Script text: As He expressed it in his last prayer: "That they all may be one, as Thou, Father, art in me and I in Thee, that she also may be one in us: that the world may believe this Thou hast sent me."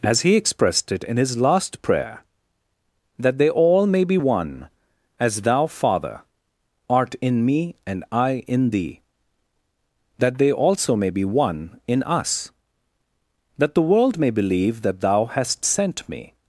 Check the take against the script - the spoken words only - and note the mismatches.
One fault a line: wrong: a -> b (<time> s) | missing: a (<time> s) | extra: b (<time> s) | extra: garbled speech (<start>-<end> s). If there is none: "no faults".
wrong: she -> they (10.4 s)
wrong: this -> that (14.8 s)